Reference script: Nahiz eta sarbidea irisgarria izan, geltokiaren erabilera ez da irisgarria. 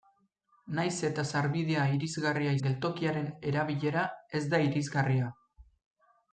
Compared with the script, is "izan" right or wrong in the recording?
wrong